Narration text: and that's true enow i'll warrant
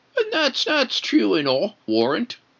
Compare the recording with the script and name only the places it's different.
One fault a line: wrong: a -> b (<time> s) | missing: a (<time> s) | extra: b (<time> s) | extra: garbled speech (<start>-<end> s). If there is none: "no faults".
extra: that's (0.7 s)
missing: i'll (1.8 s)